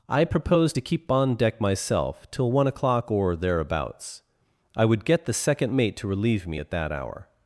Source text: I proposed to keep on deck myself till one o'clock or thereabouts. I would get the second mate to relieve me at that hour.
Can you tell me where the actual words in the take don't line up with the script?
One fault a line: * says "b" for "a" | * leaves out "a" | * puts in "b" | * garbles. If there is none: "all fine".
all fine